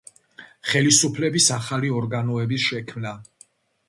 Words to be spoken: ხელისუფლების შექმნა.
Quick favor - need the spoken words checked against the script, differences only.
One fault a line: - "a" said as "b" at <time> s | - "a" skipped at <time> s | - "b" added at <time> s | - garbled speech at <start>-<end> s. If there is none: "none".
- "ახალი ორგანოების" added at 1.6 s